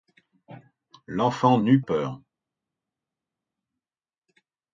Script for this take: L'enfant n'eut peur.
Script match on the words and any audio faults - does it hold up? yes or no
yes